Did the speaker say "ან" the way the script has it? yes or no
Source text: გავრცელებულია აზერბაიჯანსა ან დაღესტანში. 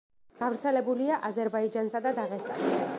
no